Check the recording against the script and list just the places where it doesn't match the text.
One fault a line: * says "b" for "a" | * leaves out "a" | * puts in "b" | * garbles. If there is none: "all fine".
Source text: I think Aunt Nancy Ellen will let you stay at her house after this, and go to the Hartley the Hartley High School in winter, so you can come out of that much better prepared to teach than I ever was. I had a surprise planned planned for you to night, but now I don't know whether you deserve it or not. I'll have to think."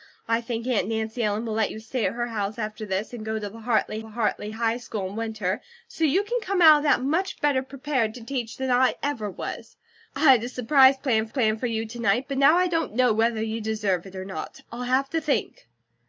all fine